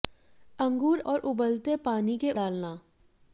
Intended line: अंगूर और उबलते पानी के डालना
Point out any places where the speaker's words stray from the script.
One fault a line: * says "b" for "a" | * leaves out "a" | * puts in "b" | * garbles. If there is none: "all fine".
all fine